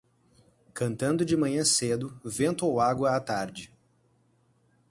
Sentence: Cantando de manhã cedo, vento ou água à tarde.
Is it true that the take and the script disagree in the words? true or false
false